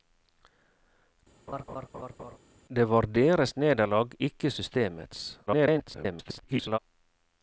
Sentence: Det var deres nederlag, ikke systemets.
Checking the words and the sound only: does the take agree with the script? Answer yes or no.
no